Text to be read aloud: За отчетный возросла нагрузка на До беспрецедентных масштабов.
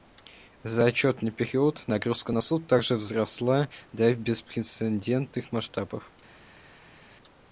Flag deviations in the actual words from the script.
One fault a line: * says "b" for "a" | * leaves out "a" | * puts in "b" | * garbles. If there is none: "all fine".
* says "период" for "возросла"
* puts in "Суд также возросла"